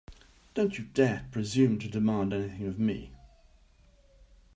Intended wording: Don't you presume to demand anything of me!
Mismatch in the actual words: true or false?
true